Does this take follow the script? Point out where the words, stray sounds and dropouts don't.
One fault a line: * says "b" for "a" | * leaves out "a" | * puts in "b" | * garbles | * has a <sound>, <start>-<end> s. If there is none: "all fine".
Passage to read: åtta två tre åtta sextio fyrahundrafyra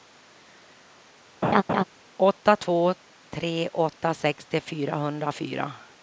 * has a laugh, 1.4-1.8 s